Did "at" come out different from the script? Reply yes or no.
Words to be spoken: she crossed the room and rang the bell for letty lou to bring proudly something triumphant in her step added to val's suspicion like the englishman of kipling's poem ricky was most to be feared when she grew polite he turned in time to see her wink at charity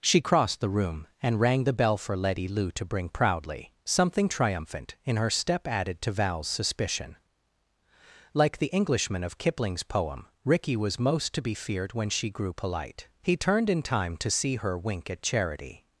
no